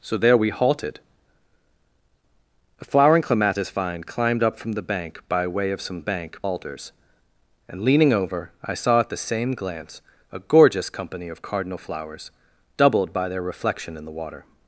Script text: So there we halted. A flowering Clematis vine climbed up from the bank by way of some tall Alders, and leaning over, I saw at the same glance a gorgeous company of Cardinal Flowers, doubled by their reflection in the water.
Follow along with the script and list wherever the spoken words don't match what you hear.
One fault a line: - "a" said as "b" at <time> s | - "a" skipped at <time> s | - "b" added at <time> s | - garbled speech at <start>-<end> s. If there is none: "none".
- "tall" said as "bank" at 6.0 s